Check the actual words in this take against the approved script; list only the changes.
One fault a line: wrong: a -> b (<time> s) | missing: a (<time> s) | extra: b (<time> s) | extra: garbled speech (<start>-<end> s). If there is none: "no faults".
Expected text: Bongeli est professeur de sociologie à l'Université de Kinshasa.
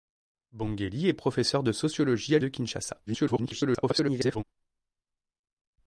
missing: l'Université (2.4 s)
extra: garbled speech (3.1-4.4 s)